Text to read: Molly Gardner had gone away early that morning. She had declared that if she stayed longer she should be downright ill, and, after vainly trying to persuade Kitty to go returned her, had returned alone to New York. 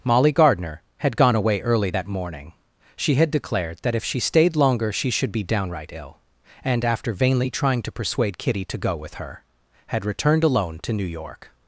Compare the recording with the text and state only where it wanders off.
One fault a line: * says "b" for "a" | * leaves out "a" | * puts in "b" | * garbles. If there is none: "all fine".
* says "with" for "returned"